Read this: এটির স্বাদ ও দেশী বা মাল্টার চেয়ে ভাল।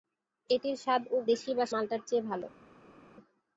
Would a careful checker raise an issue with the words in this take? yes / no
no